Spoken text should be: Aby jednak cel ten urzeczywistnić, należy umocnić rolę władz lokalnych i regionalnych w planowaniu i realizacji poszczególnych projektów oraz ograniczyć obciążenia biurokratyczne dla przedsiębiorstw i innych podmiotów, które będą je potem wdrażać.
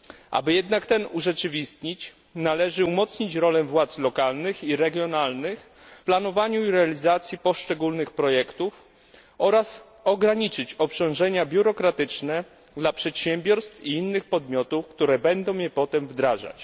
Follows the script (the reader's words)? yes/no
no